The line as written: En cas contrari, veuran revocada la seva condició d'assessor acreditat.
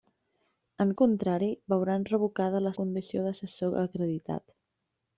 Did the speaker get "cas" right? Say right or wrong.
wrong